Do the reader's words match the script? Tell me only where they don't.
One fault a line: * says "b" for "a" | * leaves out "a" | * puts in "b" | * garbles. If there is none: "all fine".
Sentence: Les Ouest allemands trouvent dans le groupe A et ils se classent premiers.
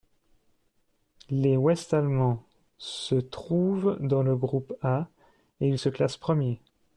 * puts in "se"